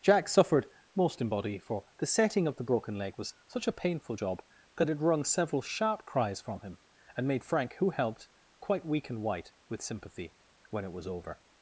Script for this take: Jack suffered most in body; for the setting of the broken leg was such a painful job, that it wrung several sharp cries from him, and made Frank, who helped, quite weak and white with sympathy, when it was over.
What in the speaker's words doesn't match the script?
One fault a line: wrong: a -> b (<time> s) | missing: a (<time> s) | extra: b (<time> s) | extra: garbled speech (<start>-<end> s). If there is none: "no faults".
no faults